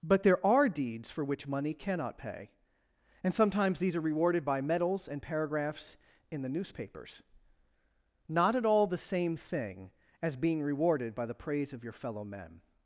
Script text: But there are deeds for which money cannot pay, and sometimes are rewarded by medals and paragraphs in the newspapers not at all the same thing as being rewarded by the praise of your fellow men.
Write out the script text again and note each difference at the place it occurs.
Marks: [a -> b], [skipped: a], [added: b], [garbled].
But there are deeds for which money cannot pay, and sometimes [added: these] are rewarded by medals and paragraphs in the newspapers not at all the same thing as being rewarded by the praise of your fellow men.